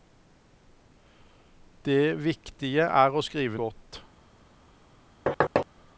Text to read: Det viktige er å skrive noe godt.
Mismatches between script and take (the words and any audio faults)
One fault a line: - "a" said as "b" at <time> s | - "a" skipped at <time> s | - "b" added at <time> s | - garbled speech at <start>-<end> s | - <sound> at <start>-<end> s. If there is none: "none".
- "noe" skipped at 3.6 s
- thud at 5.3-5.7 s